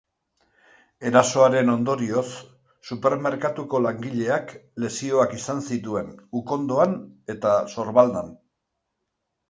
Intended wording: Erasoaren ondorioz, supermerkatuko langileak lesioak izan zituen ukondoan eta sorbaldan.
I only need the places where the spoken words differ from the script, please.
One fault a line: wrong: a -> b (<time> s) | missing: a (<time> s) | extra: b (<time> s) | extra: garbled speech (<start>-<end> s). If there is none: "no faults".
no faults